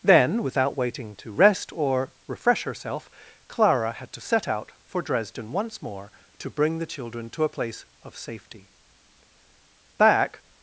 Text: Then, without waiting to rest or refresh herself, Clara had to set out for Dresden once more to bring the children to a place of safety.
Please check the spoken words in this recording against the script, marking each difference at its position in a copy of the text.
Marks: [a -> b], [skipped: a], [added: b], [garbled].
Then, without waiting to rest or refresh herself, Clara had to set out for Dresden once more to bring the children to a place of safety. [added: Back]